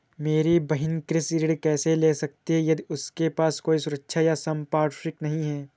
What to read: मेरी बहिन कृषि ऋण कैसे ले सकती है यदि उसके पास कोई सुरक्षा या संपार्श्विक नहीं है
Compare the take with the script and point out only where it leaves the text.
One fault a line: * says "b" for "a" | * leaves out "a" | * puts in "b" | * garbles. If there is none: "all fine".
all fine